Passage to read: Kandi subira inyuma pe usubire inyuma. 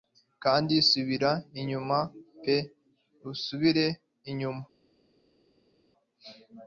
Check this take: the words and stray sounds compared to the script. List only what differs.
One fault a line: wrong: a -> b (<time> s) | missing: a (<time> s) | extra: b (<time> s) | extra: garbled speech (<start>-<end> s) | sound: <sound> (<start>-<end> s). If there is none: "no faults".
no faults